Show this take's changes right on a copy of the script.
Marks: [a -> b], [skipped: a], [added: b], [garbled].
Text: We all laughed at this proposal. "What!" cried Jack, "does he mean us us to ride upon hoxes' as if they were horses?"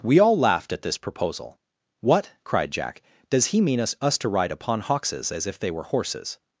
We all laughed at this proposal. "What!" cried Jack, "does he mean us us to ride upon hoxes' as if they were horses?"